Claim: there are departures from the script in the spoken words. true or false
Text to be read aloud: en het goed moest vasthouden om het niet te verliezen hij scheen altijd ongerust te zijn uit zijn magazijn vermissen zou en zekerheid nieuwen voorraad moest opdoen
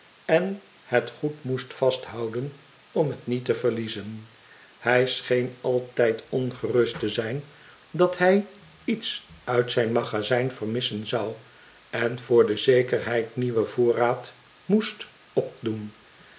true